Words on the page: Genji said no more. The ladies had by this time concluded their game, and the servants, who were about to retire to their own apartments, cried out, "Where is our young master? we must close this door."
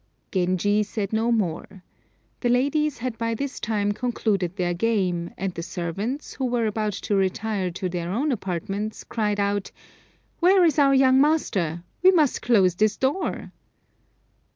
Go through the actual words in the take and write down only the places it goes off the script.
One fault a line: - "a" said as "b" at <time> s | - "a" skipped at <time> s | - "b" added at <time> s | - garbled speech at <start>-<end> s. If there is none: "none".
none